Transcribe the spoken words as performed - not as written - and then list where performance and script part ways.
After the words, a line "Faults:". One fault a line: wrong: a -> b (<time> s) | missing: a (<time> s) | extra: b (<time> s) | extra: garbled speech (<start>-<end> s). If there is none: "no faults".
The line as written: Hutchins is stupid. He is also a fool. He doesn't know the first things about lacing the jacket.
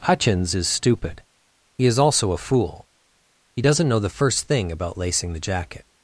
Hutchins is stupid. He is also a fool. He doesn't know the first thing about lacing the jacket.
Faults:
wrong: things -> thing (4.5 s)